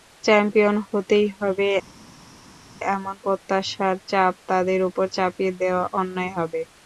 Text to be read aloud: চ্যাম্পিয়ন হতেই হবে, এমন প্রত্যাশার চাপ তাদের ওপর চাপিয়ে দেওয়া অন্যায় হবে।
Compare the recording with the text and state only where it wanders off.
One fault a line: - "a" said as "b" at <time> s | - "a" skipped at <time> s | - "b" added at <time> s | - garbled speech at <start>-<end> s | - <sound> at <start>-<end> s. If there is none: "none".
none